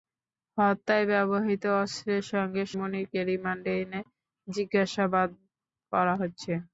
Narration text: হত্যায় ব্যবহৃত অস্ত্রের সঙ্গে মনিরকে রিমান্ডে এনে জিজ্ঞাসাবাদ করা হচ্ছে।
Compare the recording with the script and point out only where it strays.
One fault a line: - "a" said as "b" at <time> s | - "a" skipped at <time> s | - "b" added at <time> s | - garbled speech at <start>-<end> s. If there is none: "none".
none